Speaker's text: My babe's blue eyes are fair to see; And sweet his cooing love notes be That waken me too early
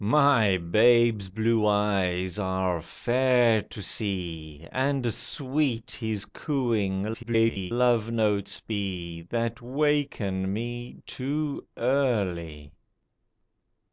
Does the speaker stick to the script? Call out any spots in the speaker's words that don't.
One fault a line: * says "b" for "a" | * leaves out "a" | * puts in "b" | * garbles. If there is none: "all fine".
* garbles